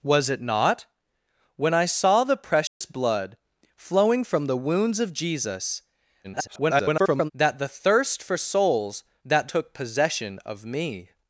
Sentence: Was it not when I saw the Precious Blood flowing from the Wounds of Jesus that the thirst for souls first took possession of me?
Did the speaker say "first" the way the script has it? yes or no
no